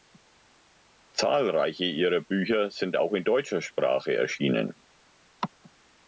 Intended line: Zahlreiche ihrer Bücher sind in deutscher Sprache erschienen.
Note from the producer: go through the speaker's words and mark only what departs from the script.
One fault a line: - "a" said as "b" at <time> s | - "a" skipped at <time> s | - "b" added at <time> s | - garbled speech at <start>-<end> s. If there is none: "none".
- "auch" added at 3.0 s